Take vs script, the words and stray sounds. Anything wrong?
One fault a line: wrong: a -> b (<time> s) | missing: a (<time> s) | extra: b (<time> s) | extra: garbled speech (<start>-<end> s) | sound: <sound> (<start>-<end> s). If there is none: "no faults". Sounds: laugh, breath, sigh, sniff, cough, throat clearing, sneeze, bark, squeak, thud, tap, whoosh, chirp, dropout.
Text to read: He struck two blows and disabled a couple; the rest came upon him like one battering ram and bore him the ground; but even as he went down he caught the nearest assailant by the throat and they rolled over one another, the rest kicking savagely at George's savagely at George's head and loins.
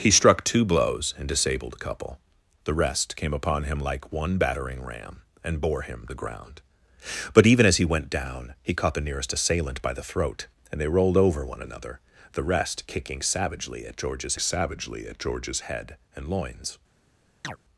sound: chirp (17.4-17.6 s)